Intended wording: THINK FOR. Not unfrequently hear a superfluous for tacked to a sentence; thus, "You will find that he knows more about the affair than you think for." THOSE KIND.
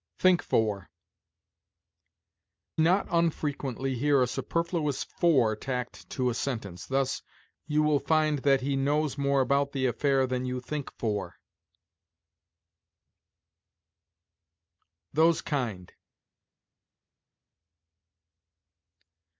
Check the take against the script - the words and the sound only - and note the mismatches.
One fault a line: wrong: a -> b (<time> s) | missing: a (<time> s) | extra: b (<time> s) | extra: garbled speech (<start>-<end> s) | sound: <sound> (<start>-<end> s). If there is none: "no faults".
no faults